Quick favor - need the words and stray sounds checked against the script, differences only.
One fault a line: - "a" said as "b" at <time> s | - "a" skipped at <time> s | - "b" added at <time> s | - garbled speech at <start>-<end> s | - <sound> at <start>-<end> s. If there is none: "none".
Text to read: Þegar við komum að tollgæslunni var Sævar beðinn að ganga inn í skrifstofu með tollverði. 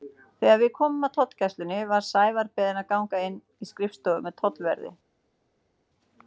none